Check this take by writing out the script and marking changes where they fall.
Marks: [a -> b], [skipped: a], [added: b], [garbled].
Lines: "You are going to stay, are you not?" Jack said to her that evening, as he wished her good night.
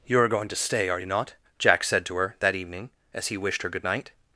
"You are going to stay, are you not?" Jack said to her that evening, as he wished her good night.